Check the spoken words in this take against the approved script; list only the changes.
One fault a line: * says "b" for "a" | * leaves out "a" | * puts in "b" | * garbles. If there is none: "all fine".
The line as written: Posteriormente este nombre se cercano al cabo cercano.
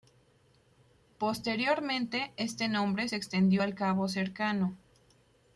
* says "extendió" for "cercano"